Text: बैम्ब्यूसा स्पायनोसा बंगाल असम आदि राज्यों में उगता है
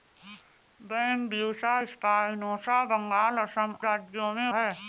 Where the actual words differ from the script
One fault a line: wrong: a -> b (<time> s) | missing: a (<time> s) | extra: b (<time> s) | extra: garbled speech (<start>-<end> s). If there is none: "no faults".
missing: आदि (3.8 s)
missing: उगता (4.5 s)